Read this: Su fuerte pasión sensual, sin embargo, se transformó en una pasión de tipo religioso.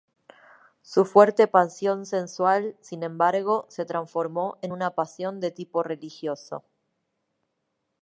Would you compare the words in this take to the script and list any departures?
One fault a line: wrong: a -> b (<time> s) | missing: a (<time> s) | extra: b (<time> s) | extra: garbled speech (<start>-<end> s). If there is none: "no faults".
no faults